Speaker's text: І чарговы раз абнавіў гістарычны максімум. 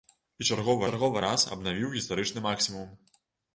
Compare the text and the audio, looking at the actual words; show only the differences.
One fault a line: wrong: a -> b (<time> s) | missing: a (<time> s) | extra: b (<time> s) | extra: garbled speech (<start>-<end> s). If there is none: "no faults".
extra: чарговы (0.9 s)